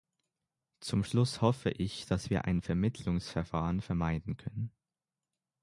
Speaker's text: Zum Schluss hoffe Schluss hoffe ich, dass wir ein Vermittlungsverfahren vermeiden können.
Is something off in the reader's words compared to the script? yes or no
yes